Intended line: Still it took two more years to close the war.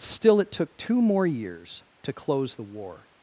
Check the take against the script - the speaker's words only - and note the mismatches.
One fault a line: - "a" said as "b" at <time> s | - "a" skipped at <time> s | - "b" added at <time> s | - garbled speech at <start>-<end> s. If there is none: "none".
none